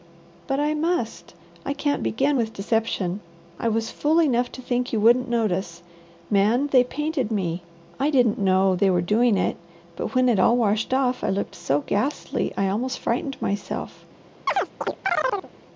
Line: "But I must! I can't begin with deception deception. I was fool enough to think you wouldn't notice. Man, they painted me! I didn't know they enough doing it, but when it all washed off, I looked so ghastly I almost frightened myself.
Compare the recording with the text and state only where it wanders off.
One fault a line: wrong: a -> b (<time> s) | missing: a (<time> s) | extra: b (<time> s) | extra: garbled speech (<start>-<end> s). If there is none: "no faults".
missing: deception (3.2 s)
wrong: enough -> were (8.9 s)